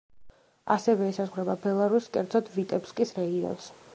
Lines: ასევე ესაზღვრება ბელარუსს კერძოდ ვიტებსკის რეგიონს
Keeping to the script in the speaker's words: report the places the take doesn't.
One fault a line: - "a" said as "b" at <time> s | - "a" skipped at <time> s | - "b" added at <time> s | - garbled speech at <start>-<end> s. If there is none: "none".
none